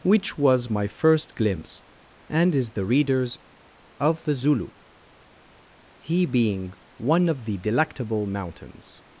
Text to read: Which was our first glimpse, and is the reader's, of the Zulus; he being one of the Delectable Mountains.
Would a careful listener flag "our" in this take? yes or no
yes